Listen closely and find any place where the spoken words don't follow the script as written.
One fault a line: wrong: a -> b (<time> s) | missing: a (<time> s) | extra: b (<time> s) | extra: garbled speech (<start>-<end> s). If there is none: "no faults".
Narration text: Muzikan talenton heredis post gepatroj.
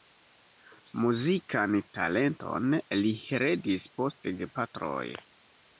extra: li (3.0 s)